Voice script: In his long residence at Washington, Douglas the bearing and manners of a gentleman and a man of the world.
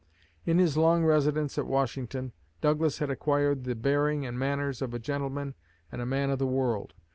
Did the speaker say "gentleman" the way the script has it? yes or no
yes